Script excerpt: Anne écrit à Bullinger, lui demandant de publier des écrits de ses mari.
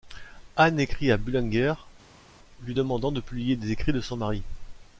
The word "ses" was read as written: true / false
false